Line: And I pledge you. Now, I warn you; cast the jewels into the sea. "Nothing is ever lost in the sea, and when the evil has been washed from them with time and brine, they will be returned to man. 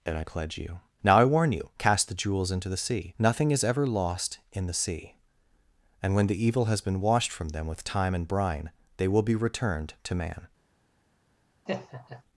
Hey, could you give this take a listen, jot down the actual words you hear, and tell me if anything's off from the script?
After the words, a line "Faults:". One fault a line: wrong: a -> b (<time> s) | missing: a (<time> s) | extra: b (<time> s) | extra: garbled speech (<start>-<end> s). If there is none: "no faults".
And I pledge you. Now, I warn you; cast the jewels into the sea. "Nothing is ever lost in the sea, and when the evil has been washed from them with time and brine, they will be returned to man.
Faults:
no faults